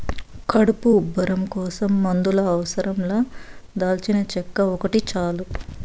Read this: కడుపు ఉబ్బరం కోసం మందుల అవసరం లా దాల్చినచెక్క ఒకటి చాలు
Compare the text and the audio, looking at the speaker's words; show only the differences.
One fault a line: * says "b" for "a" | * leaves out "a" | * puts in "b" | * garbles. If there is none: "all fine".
all fine